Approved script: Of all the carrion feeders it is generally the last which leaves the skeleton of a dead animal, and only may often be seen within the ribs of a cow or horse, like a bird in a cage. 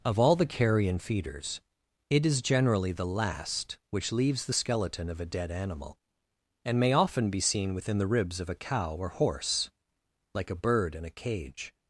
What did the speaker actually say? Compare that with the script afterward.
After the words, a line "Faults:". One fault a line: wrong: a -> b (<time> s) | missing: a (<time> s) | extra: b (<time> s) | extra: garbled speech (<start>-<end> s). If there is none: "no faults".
Of all the carrion feeders it is generally the last which leaves the skeleton of a dead animal, and may often be seen within the ribs of a cow or horse, like a bird in a cage.
Faults:
missing: only (6.8 s)